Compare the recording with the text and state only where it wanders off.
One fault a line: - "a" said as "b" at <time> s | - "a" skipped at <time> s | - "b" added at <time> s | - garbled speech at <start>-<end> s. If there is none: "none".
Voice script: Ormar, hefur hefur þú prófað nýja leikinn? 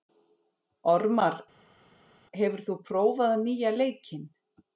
- "hefur" skipped at 2.6 s